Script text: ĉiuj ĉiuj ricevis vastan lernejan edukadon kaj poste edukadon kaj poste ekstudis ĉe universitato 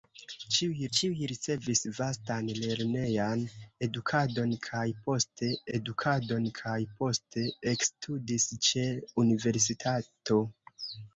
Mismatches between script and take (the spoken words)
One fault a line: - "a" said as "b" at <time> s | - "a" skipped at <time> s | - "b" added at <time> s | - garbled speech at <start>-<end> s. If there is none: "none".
none